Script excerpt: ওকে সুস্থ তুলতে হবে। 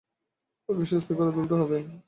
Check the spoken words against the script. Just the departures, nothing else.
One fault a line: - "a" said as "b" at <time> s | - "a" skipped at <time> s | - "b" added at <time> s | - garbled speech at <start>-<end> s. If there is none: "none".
- "করে" added at 1.2 s